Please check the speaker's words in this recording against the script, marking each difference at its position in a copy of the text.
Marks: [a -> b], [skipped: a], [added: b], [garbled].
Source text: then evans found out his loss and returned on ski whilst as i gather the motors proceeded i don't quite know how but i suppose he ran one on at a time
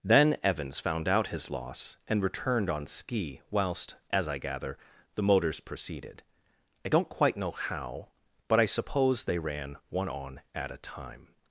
then evans found out his loss and returned on ski whilst as i gather the motors proceeded i don't quite know how but i suppose [he -> they] ran one on at a time